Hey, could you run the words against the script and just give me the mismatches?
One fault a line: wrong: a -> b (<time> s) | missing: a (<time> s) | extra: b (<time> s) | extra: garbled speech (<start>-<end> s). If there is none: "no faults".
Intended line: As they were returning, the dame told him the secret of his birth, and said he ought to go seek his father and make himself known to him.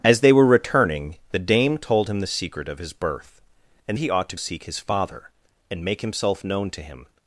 missing: said (4.0 s)
missing: go (4.4 s)